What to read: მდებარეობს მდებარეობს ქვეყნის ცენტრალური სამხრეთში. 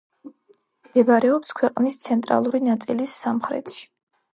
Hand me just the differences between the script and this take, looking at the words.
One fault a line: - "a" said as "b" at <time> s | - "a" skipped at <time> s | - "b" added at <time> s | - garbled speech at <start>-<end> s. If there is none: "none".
- "მდებარეობს" skipped at 1.5 s
- "ნაწილის" added at 2.7 s